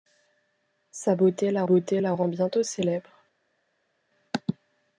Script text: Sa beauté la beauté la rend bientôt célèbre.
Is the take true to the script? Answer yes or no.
yes